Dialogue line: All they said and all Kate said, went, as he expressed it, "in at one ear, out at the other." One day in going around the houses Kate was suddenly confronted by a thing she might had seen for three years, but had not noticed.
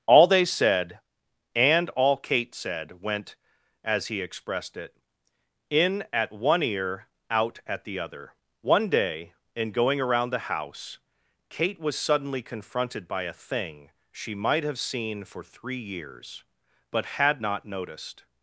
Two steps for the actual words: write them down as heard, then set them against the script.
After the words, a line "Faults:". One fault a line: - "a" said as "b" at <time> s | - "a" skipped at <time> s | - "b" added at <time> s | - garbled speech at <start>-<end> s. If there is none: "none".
All they said and all Kate said, went, as he expressed it, "in at one ear, out at the other." One day in going around the house Kate was suddenly confronted by a thing she might have seen for three years, but had not noticed.
Faults:
- "houses" said as "house" at 10.4 s
- "had" said as "have" at 14.6 s